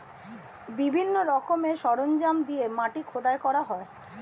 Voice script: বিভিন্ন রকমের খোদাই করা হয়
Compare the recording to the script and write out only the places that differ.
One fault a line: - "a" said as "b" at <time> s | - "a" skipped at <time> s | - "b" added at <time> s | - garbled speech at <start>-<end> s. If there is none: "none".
- "সরঞ্জাম দিয়ে মাটি" added at 1.8 s